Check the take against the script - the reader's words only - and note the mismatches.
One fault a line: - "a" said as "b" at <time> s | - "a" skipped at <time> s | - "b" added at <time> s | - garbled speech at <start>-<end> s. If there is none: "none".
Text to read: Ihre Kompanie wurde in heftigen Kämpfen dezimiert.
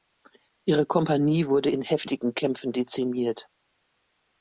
none